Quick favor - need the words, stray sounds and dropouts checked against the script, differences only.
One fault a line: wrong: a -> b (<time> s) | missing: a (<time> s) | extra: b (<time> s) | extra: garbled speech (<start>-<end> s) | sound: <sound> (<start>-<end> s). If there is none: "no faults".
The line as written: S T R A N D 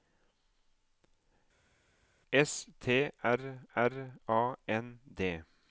extra: R (3.8 s)